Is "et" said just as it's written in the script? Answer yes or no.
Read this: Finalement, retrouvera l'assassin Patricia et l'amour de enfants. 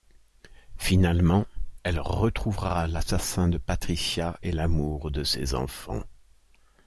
yes